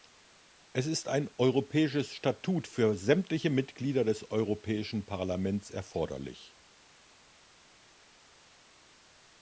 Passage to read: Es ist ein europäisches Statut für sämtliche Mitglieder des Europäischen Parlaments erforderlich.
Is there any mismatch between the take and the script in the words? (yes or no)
no